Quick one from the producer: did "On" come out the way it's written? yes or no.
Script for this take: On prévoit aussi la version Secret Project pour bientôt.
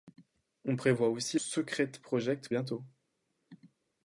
yes